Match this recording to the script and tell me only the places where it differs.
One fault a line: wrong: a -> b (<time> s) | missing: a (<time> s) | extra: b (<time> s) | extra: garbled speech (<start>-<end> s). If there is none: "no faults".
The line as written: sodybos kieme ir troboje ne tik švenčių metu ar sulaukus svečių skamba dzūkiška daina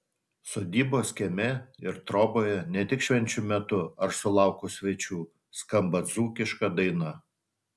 no faults